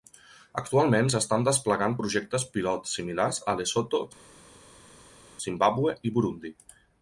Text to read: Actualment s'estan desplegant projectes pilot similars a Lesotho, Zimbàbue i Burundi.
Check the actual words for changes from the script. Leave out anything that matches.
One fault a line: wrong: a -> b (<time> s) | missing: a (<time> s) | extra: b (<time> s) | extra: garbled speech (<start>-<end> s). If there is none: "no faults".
no faults